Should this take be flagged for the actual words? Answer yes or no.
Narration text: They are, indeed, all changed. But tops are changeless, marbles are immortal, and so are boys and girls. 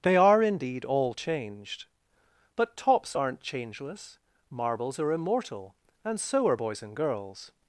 yes